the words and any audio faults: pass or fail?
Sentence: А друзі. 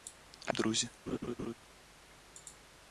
fail